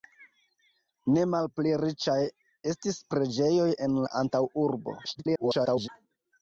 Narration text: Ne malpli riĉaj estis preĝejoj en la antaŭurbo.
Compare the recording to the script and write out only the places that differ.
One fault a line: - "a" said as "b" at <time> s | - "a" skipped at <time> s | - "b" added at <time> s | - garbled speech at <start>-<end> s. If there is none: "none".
- garbled speech at 5.0-5.9 s